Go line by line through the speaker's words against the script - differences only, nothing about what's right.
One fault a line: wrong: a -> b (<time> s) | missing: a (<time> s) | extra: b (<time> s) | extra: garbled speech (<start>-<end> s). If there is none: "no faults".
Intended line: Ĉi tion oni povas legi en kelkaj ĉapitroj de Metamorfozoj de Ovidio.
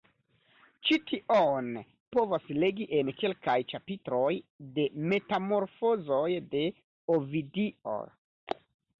missing: oni (1.7 s)